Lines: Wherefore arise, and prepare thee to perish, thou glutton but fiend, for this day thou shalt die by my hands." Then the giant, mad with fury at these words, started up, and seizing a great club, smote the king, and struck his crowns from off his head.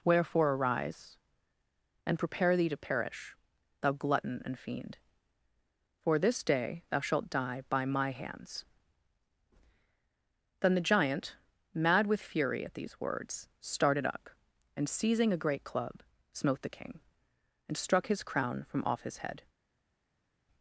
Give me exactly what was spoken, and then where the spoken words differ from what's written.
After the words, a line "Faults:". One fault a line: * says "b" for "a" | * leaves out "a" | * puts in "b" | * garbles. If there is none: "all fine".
Wherefore arise, and prepare thee to perish, thou glutton and fiend, for this day thou shalt die by my hands." Then the giant, mad with fury at these words, started up, and seizing a great club, smote the king, and struck his crown from off his head.
Faults:
* says "and" for "but"
* says "crown" for "crowns"